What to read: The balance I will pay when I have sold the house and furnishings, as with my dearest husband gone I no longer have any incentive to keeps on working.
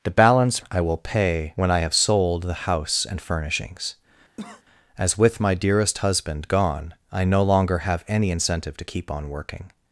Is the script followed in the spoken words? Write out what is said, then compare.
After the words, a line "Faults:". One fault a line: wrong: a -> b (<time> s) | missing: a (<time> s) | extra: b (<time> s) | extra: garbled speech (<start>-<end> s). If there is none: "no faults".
The balance I will pay when I have sold the house and furnishings, as with my dearest husband gone I no longer have any incentive to keep on working.
Faults:
wrong: keeps -> keep (8.8 s)